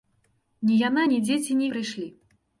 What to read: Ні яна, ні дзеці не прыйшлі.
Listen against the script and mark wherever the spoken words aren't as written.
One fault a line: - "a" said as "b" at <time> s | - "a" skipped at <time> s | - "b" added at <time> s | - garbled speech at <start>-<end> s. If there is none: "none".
none